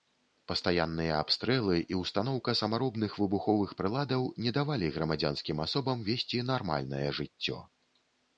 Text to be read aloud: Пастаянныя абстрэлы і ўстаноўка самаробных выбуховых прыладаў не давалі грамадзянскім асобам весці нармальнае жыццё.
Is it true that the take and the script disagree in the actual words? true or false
false